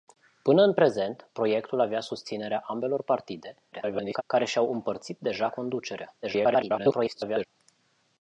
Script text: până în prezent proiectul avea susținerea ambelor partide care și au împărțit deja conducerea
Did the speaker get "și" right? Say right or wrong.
right